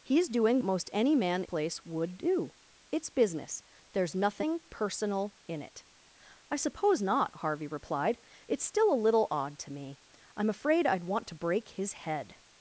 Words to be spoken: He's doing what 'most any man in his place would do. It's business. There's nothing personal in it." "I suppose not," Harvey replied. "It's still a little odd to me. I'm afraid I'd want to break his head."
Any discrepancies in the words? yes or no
yes